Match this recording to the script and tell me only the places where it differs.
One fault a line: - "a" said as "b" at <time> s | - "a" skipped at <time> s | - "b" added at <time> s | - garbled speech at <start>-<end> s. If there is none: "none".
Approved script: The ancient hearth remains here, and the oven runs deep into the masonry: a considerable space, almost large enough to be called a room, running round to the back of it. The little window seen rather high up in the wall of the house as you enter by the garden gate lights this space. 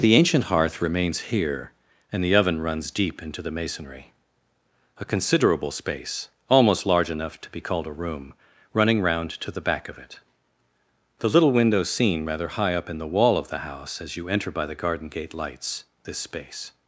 none